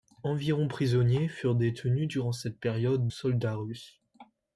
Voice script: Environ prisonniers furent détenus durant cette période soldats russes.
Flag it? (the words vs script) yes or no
no